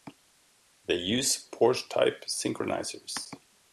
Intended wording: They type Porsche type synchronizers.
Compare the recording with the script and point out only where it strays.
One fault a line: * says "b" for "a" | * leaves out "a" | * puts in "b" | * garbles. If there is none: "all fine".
* says "use" for "type"